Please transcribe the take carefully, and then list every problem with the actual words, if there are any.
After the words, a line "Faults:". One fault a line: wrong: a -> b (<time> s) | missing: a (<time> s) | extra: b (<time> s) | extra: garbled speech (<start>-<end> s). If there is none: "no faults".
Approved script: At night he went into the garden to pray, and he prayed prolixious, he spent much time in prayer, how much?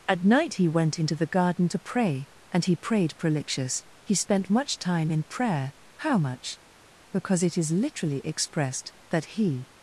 At night he went into the garden to pray, and he prayed prolixious, he spent much time in prayer, how much? Because it is literally expressed, that he
Faults:
extra: Because it is literally expressed that he (7.1 s)